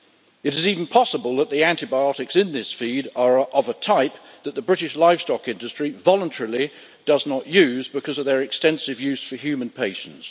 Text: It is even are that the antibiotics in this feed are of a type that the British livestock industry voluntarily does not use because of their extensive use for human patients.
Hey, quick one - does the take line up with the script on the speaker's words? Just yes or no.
no